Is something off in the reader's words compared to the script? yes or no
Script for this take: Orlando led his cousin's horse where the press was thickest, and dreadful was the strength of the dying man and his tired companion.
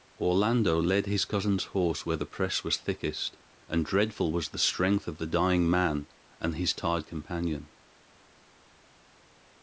no